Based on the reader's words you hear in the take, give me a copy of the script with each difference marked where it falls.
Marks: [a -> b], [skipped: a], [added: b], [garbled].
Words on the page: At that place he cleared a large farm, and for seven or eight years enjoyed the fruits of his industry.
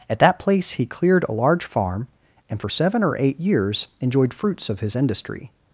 At that place he cleared a large farm, and for seven or eight years enjoyed [skipped: the] fruits of his industry.